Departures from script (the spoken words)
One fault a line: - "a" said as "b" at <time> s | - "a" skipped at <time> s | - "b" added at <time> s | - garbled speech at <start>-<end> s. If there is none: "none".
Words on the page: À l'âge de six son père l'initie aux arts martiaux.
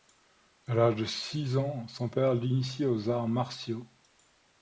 - "ans" added at 1.6 s